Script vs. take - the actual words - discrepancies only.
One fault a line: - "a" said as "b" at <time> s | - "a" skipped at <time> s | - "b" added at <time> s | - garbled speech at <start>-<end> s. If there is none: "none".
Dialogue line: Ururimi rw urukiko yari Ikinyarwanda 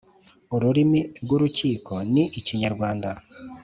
- "yari" said as "ni" at 2.1 s